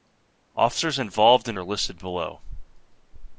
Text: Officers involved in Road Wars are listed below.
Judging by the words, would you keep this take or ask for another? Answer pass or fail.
fail